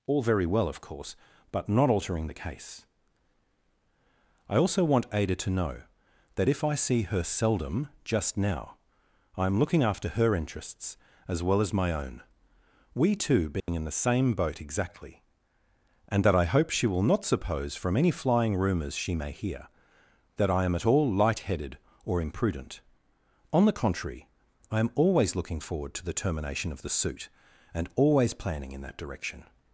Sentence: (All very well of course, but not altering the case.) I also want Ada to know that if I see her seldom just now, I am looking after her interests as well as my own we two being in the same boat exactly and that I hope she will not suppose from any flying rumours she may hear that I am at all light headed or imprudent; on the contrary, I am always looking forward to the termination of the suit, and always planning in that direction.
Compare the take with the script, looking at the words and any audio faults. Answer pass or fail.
fail